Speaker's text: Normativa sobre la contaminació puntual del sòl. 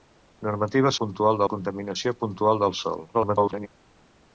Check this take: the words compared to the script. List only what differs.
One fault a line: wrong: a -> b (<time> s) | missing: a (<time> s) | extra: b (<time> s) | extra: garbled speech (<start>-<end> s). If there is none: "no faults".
wrong: sobre -> puntual (1.0 s)
extra: garbled speech (3.1-3.7 s)